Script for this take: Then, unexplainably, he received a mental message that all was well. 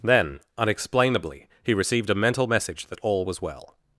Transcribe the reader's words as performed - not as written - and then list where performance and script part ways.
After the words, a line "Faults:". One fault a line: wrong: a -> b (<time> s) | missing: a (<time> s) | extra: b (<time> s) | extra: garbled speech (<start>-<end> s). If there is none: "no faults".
Then, unexplainably, he received a mental message that all was well.
Faults:
no faults